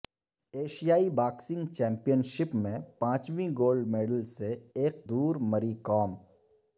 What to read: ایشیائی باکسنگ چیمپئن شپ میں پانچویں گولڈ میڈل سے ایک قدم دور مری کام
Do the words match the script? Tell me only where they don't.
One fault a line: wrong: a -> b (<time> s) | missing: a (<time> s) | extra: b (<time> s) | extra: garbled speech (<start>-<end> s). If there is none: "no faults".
missing: قدم (5.1 s)